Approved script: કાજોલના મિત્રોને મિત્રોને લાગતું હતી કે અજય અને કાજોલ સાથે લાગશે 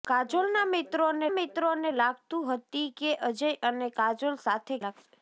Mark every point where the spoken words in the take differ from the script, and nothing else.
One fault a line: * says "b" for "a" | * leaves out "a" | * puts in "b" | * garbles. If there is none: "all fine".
all fine